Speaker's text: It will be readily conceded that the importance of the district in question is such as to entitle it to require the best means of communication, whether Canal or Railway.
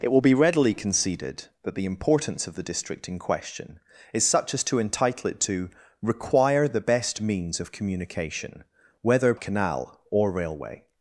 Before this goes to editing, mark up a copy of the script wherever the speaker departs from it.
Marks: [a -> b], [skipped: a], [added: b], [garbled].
It will be readily conceded that the importance of the district in question is such as to entitle it to require the best means of communication, whether Canal or Railway.